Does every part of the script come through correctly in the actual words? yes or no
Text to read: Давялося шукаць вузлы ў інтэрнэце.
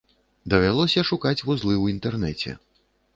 yes